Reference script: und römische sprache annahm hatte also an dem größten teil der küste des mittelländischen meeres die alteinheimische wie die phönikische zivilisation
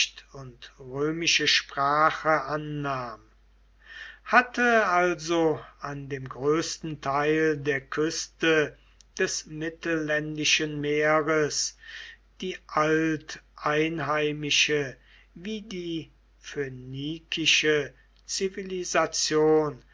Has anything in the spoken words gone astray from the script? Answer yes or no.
no